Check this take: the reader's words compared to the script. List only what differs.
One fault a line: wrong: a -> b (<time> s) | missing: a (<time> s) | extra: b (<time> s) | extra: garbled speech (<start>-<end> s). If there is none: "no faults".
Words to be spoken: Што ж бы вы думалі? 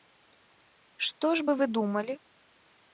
no faults